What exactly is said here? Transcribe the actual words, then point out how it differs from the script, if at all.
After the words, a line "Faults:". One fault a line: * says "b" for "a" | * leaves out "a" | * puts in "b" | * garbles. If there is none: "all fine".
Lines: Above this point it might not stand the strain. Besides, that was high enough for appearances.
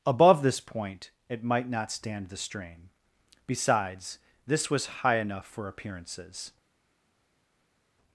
Above this point it might not stand the strain. Besides, this was high enough for appearances.
Faults:
* says "this" for "that"